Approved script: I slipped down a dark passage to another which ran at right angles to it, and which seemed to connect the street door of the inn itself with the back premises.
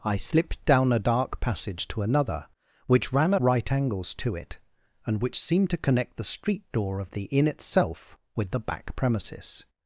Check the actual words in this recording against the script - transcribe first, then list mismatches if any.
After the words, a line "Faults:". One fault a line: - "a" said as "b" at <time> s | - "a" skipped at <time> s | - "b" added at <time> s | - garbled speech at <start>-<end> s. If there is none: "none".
I slipped down a dark passage to another which ran right angles to it, and which seemed to connect the street door of the inn itself with the back premises.
Faults:
- "at" skipped at 3.4 s